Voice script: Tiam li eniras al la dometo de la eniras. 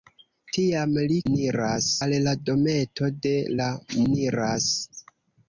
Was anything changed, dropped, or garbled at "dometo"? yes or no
no